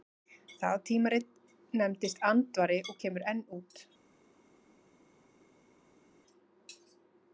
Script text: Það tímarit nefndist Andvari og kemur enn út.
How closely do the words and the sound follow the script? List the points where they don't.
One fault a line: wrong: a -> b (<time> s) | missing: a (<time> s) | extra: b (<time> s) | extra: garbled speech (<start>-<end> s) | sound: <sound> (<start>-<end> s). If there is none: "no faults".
no faults